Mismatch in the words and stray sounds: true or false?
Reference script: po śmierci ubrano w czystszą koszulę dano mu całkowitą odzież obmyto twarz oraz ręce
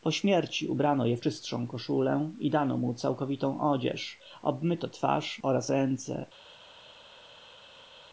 true